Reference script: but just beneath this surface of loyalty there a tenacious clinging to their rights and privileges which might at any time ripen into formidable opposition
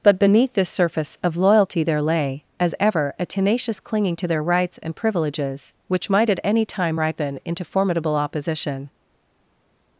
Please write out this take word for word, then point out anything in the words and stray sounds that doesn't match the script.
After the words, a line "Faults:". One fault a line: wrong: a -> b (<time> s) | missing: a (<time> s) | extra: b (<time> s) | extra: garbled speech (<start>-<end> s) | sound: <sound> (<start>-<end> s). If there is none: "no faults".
but beneath this surface of loyalty there lay as ever a tenacious clinging to their rights and privileges which might at any time ripen into formidable opposition
Faults:
missing: just (0.2 s)
extra: lay as ever (2.0 s)